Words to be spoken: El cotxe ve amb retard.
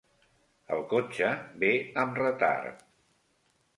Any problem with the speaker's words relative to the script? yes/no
no